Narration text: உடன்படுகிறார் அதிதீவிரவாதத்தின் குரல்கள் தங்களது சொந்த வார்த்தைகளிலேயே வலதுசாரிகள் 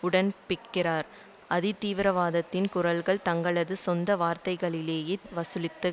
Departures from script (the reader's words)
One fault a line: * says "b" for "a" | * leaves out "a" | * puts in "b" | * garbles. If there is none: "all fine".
all fine